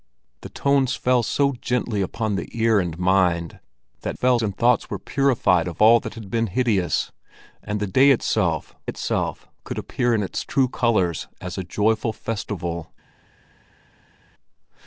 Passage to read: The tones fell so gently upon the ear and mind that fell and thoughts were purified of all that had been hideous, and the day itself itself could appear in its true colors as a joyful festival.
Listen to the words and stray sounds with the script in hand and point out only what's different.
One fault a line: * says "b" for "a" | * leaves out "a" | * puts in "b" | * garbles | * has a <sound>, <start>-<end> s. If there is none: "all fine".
all fine